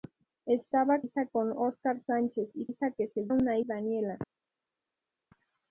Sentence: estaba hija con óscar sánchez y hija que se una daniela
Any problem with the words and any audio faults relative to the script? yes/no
no